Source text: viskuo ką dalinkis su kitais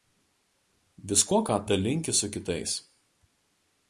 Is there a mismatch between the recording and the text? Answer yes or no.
no